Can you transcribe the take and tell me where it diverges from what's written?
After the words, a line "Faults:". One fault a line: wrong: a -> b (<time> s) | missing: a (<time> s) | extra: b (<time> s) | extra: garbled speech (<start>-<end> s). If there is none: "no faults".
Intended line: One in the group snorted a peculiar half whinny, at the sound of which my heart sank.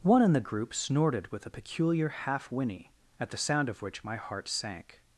One in the group snorted with a peculiar half whinny, at the sound of which my heart sank.
Faults:
extra: with (1.3 s)